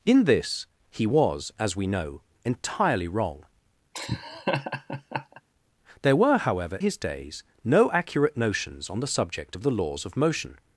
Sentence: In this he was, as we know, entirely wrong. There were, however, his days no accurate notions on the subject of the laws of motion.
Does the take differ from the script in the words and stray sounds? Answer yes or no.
yes